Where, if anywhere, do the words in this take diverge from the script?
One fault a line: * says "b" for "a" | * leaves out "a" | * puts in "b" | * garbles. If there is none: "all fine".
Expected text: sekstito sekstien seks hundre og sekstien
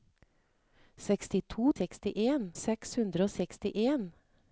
all fine